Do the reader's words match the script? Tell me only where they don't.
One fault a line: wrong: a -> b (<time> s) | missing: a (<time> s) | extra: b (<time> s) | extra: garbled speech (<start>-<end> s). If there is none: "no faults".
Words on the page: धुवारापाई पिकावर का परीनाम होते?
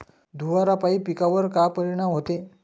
no faults